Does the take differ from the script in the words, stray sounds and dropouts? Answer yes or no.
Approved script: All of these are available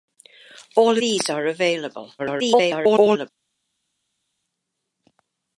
yes